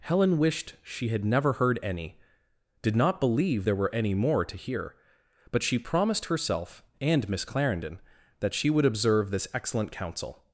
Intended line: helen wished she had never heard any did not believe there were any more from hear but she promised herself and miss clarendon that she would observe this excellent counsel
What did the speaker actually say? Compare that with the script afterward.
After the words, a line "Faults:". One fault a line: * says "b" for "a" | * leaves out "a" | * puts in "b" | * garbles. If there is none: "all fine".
helen wished she had never heard any did not believe there were any more to hear but she promised herself and miss clarendon that she would observe this excellent counsel
Faults:
* says "to" for "from"